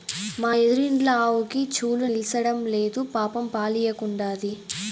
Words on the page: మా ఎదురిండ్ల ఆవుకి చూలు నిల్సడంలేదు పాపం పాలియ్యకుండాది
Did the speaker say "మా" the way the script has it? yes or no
yes